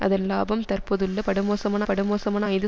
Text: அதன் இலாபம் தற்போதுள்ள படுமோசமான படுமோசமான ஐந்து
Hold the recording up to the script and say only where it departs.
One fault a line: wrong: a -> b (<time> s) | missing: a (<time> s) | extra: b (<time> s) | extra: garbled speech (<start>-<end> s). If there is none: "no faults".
no faults